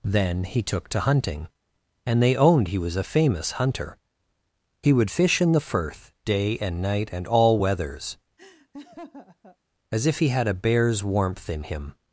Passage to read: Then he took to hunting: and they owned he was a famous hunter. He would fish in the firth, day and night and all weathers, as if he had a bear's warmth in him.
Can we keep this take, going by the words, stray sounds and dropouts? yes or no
no